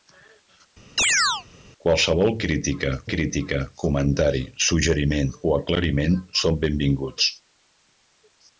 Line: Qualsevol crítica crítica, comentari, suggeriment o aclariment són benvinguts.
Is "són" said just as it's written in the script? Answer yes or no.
yes